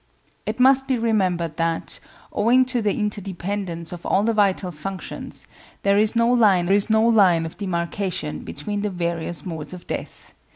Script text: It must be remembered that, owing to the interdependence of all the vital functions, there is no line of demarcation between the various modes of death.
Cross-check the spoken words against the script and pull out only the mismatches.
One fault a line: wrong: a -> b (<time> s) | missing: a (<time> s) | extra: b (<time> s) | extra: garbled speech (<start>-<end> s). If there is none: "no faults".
extra: is no line (6.7 s)